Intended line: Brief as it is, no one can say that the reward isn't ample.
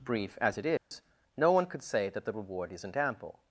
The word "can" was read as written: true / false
false